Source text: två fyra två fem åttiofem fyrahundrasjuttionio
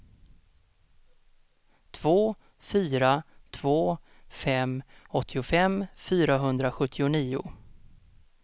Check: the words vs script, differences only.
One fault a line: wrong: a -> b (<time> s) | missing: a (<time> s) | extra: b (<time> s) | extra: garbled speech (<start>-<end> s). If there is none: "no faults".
no faults